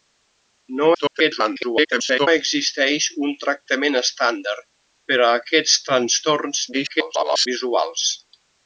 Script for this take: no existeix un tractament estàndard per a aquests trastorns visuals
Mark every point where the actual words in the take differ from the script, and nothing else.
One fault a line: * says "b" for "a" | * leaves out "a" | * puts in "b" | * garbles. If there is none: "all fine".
* garbles
* garbles